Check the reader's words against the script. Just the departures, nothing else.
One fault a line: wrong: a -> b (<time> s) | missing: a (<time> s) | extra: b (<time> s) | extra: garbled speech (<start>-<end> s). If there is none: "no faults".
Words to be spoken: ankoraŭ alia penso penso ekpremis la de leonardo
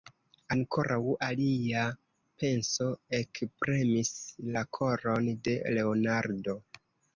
missing: penso (2.9 s)
extra: koron (4.8 s)